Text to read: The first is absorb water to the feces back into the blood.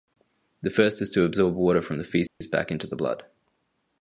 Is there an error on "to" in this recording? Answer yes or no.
yes